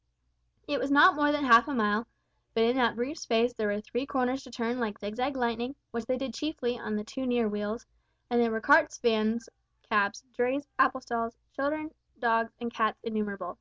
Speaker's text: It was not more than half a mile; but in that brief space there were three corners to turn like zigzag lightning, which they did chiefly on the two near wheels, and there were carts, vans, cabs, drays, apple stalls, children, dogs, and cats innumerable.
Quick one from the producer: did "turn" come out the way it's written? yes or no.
yes